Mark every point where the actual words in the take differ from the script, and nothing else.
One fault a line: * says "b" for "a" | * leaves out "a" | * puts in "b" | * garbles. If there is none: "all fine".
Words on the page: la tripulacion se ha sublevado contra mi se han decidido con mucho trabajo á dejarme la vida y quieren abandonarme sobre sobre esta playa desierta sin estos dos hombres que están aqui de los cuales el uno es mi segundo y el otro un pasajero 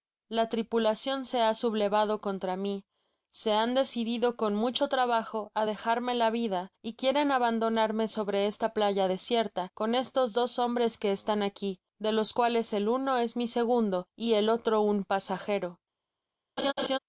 * leaves out "sobre"
* says "con" for "sin"